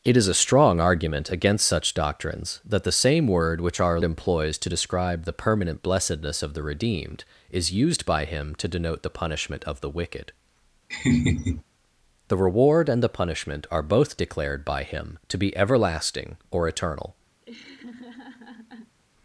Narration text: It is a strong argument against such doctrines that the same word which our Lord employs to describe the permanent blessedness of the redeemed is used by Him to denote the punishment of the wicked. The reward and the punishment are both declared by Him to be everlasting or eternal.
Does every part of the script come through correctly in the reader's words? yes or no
no